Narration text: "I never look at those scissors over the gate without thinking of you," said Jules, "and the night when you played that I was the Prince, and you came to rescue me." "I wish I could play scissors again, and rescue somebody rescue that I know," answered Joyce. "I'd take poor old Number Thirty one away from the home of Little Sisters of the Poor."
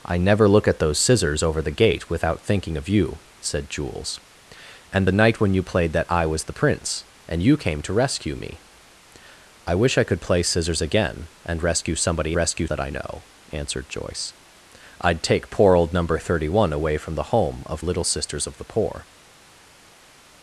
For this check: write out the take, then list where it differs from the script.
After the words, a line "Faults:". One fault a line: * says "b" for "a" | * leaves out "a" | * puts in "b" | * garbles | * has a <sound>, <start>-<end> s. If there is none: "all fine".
"I never look at those scissors over the gate without thinking of you," said Jules, "and the night when you played that I was the Prince, and you came to rescue me." "I wish I could play scissors again, and rescue somebody rescue that I know," answered Joyce. "I'd take poor old Number Thirty one away from the home of Little Sisters of the Poor."
Faults:
all fine